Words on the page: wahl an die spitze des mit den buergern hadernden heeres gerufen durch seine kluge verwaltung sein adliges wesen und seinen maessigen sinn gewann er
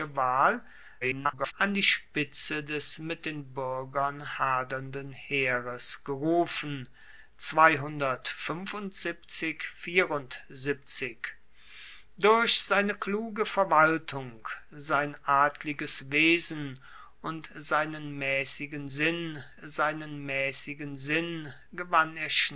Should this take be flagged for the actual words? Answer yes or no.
yes